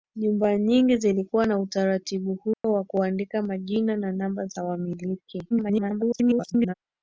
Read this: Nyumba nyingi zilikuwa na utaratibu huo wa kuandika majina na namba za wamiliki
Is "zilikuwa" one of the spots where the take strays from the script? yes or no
no